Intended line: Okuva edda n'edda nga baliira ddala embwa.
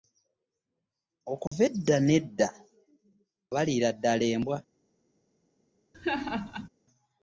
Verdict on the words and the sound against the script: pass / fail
fail